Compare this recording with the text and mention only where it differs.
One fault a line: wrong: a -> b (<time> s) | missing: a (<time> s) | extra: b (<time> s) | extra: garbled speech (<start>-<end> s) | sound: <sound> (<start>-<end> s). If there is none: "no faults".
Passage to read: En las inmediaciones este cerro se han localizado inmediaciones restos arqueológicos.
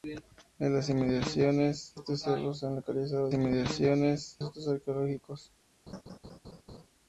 sound: laugh (5.9-6.9 s)